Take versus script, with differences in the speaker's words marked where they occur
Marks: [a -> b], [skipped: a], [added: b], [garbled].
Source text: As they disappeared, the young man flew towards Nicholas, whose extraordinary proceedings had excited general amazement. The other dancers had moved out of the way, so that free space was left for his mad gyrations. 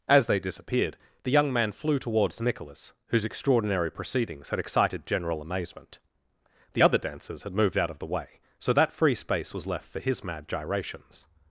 As they disappeared, the young man flew towards Nicholas, whose extraordinary proceedings had excited general amazement. The other dancers had moved out of the way, so that free space was left for his mad gyrations.